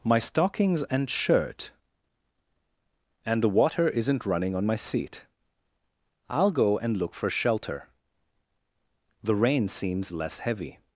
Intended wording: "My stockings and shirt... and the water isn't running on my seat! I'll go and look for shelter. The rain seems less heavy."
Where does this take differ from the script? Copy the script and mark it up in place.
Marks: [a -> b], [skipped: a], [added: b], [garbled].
"My stockings and shirt... and the water isn't running on my seat! I'll go and look for shelter. The rain seems less heavy."